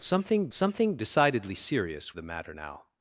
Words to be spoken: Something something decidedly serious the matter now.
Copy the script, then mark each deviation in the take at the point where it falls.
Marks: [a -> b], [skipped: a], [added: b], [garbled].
Something something decidedly serious the matter now.